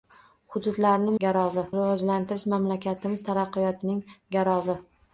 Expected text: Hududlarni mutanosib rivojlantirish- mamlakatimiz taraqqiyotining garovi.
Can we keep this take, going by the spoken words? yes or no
no